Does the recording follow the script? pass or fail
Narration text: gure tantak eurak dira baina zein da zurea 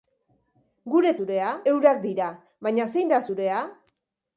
fail